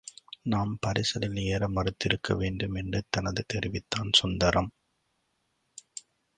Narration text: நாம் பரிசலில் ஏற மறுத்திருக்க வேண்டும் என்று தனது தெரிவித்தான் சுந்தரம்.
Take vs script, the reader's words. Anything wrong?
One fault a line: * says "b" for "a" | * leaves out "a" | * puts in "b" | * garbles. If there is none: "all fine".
all fine